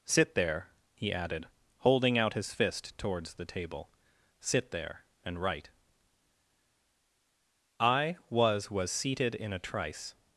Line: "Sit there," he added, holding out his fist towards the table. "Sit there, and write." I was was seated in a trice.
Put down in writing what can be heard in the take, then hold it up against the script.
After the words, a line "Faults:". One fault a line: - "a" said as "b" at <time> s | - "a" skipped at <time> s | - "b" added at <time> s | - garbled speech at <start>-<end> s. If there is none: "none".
"Sit there," he added, holding out his fist towards the table. "Sit there, and write." I was was seated in a trice.
Faults:
none